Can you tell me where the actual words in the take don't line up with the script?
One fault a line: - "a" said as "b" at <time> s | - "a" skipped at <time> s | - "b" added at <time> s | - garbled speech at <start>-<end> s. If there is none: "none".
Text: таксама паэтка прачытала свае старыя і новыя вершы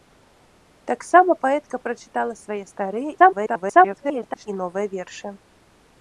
- garbled speech at 3.2-4.5 s